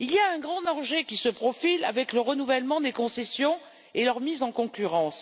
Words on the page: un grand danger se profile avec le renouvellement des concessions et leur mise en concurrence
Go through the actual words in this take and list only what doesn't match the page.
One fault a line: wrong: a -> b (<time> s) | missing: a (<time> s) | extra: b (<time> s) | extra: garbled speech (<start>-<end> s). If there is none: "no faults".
no faults